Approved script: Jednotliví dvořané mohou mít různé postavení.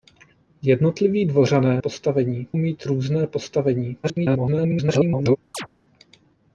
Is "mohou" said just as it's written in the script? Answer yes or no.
no